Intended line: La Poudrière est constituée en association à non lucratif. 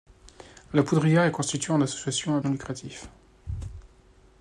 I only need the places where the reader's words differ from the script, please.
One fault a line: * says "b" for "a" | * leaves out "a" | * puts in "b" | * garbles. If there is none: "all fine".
all fine